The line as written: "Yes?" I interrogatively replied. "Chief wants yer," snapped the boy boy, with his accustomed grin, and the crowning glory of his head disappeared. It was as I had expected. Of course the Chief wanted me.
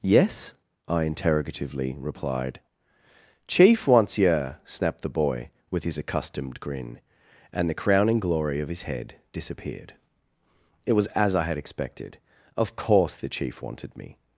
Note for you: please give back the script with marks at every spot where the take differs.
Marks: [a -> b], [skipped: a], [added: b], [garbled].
"Yes?" I interrogatively replied. "Chief wants yer," snapped the boy [skipped: boy,] with his accustomed grin, and the crowning glory of his head disappeared. It was as I had expected. Of course the Chief wanted me.